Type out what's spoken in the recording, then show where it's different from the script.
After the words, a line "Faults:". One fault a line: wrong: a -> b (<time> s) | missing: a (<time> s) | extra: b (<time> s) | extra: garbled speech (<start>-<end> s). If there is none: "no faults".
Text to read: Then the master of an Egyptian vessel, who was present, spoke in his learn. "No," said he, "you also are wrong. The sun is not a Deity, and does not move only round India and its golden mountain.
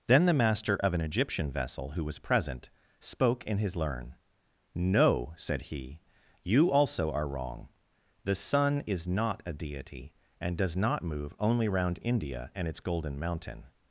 Then the master of an Egyptian vessel, who was present, spoke in his learn. "No," said he, "you also are wrong. The sun is not a Deity, and does not move only round India and its golden mountain.
Faults:
no faults